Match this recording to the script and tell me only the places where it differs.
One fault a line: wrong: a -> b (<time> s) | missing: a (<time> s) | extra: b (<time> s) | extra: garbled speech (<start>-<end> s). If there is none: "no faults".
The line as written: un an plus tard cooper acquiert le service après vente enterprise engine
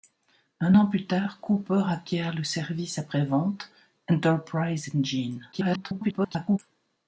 extra: garbled speech (5.5-6.6 s)